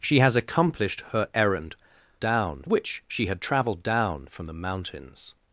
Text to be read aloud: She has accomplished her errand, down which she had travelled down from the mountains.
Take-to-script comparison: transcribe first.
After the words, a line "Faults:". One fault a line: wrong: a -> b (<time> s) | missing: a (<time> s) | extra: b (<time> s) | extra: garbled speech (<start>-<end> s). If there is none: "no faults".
She has accomplished her errand, down which she had travelled down from the mountains.
Faults:
no faults